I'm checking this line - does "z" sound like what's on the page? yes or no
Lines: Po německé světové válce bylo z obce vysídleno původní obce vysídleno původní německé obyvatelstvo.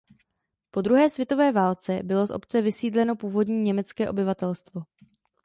yes